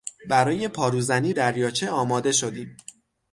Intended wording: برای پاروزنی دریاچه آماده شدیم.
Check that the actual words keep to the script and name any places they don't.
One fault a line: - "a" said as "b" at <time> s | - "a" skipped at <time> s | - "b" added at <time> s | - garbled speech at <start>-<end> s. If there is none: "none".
none